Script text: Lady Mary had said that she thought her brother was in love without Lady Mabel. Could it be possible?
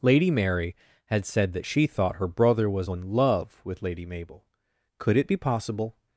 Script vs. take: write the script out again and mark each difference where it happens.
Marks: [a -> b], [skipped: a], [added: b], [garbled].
Lady Mary had said that she thought her brother was in love [without -> with] Lady Mabel. Could it be possible?